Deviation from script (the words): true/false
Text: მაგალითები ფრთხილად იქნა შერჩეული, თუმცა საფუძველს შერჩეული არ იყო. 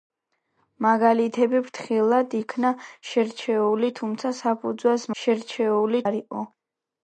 false